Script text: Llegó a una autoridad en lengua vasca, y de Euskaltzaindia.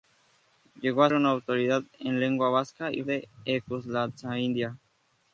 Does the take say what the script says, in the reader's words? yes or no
yes